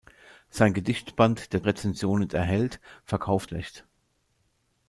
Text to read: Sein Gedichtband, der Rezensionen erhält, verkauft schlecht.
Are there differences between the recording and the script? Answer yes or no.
no